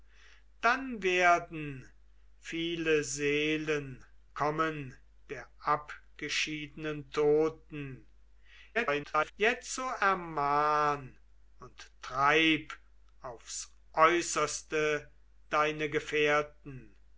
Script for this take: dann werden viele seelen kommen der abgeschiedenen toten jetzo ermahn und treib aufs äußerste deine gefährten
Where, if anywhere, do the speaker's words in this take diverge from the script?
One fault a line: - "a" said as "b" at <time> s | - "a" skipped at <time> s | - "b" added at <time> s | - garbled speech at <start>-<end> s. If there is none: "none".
- garbled speech at 8.7-9.3 s